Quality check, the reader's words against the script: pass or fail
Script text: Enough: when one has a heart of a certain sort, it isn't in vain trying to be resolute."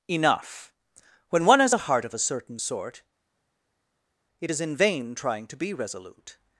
fail